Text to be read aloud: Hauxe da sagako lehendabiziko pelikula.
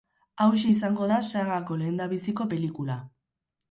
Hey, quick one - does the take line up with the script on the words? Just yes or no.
no